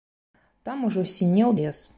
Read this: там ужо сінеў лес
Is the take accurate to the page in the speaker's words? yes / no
yes